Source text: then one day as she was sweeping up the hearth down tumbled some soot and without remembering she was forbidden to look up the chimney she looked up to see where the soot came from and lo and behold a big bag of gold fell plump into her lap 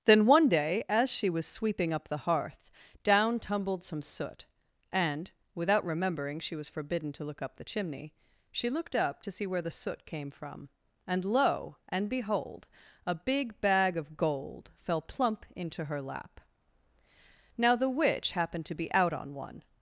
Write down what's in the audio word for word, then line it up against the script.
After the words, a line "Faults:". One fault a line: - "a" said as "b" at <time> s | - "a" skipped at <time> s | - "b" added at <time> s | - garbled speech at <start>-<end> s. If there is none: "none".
then one day as she was sweeping up the hearth down tumbled some soot and without remembering she was forbidden to look up the chimney she looked up to see where the soot came from and lo and behold a big bag of gold fell plump into her lap now the witch happened to be out on one
Faults:
- "now the witch happened to be out on one" added at 17.6 s